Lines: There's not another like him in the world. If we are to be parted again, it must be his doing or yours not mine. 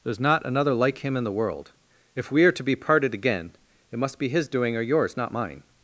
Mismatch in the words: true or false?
false